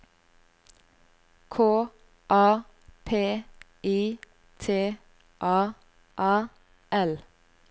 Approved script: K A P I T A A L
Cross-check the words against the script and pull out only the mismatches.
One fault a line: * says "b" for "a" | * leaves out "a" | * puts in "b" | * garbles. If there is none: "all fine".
all fine